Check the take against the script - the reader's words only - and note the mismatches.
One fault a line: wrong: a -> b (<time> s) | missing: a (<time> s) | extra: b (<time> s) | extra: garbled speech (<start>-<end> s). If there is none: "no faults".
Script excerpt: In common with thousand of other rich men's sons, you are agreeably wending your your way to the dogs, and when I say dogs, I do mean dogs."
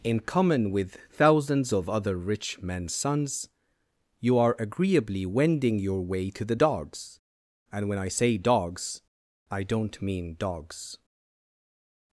wrong: thousand -> thousands (1.1 s)
missing: your (6.0 s)
wrong: do -> don't (9.6 s)